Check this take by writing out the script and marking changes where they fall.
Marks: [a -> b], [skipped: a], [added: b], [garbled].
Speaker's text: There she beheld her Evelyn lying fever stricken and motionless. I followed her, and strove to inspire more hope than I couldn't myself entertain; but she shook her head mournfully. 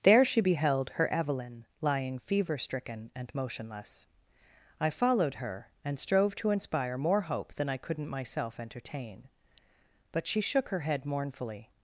There she beheld her Evelyn lying fever stricken and motionless. I followed her, and strove to inspire more hope than I couldn't myself entertain; but she shook her head mournfully.